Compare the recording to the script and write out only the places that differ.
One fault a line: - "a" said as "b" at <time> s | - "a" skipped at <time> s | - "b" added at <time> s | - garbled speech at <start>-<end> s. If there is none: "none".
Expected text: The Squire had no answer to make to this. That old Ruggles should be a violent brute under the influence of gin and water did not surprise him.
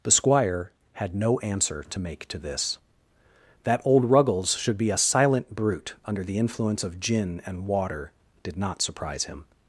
- "violent" said as "silent" at 5.0 s